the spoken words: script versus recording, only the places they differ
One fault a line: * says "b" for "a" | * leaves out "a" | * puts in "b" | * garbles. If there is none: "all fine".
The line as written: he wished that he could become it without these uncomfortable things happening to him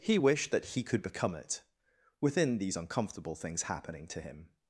* says "within" for "without"